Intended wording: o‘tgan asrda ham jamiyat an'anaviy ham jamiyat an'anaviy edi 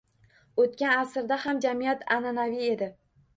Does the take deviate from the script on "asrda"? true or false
false